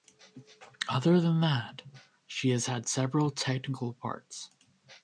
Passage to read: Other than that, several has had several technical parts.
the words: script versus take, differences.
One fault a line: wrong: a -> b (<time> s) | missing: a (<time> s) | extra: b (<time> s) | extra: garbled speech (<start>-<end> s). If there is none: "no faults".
wrong: several -> she (2.2 s)